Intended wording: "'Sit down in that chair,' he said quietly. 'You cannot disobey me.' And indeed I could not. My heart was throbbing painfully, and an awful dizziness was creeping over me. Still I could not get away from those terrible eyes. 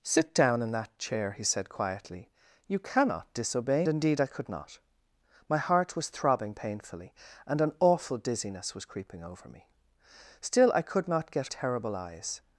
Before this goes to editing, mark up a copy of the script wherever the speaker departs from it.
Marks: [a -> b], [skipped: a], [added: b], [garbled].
"'Sit down in that chair,' he said quietly. 'You cannot disobey [skipped: me.' And] indeed I could not. My heart was throbbing painfully, and an awful dizziness was creeping over me. Still I could not get [skipped: away from those] terrible eyes.